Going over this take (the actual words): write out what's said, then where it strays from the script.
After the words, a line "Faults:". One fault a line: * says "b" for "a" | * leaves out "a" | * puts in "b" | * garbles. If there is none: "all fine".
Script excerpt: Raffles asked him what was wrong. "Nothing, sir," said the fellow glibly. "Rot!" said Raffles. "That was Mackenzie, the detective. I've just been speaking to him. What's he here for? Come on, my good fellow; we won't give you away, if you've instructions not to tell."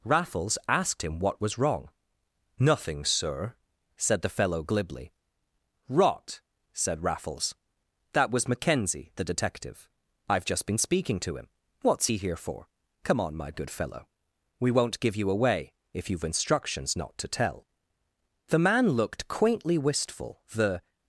Raffles asked him what was wrong. "Nothing, sir," said the fellow glibly. "Rot!" said Raffles. "That was Mackenzie, the detective. I've just been speaking to him. What's he here for? Come on, my good fellow; we won't give you away, if you've instructions not to tell." The man looked quaintly wistful, the
Faults:
* puts in "The man looked quaintly wistful the"